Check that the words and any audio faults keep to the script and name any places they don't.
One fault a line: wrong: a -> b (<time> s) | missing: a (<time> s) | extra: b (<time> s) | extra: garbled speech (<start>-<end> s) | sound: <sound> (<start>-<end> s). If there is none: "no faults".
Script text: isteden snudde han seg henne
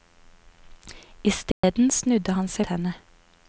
sound: dropout (1.5-1.6 s)